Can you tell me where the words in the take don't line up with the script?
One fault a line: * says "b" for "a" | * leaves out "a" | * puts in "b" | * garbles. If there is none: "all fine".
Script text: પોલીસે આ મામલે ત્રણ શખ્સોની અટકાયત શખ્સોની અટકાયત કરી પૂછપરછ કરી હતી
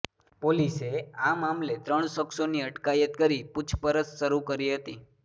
* leaves out "શખ્સોની અટકાયત"
* puts in "શરૂ"